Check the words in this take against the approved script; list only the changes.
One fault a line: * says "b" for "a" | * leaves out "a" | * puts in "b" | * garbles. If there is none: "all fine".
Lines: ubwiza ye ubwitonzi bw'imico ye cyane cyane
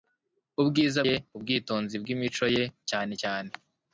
all fine